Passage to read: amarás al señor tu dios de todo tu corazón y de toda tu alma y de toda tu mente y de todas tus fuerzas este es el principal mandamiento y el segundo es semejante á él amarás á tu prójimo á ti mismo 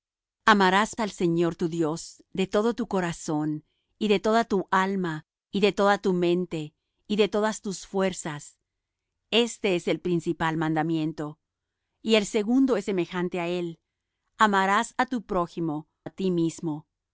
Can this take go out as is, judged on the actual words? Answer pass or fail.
pass